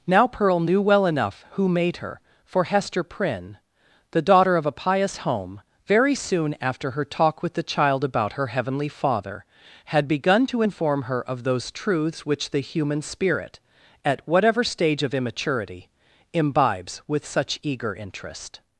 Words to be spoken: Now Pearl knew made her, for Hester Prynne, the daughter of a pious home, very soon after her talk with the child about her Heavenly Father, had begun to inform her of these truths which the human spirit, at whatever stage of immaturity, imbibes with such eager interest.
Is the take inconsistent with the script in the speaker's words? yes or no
yes